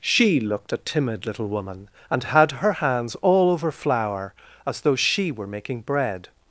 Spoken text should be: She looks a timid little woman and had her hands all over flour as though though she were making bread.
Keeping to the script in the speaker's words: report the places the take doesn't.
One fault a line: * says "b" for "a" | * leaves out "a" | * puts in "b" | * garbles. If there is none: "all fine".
* says "looked" for "looks"
* leaves out "though"